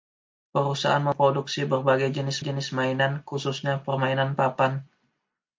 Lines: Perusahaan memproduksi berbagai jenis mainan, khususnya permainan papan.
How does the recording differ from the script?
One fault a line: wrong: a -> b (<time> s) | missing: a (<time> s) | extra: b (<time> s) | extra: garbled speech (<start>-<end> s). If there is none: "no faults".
extra: jenis (2.4 s)